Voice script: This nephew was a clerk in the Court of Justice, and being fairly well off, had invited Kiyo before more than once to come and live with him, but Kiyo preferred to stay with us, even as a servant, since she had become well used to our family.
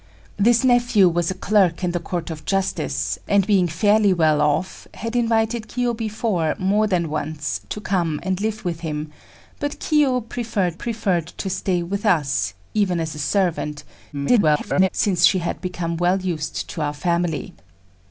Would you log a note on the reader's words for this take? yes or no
yes